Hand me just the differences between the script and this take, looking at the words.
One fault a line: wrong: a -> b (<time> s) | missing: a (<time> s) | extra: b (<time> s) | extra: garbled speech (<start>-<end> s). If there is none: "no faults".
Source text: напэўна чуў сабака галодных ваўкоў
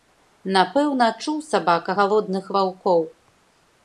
no faults